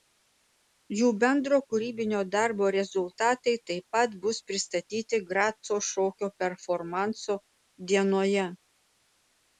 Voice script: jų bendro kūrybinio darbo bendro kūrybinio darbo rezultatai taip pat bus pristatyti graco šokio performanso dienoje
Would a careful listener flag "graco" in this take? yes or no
no